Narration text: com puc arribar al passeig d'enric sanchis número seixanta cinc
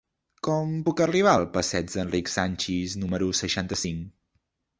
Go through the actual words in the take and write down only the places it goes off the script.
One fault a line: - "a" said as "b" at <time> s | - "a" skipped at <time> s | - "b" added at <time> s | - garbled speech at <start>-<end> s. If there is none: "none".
none